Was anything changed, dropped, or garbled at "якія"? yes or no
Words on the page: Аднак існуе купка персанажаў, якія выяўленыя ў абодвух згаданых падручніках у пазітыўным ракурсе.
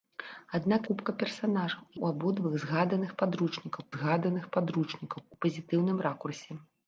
yes